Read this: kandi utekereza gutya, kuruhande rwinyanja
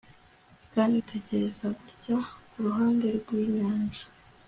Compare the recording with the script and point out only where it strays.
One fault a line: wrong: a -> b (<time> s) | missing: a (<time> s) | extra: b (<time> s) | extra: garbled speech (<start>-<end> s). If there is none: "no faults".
no faults